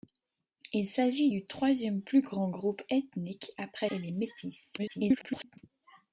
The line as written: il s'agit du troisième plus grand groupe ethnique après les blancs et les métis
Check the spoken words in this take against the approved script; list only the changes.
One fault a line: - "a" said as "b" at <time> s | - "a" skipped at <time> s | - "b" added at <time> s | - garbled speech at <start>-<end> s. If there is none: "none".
- "les blancs" skipped at 3.9 s
- garbled speech at 4.8-5.6 s